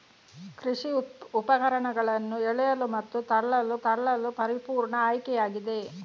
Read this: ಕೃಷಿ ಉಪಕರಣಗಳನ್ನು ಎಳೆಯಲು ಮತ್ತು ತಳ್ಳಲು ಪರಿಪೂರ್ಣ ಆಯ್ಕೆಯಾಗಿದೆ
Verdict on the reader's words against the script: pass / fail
fail